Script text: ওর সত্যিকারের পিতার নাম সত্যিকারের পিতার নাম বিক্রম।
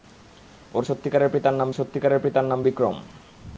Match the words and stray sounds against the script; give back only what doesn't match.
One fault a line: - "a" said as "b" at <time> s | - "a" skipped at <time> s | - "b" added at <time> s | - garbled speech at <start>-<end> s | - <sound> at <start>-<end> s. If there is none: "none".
none